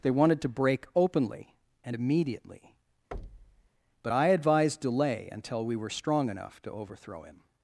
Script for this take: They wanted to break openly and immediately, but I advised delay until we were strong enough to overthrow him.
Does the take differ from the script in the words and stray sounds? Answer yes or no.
yes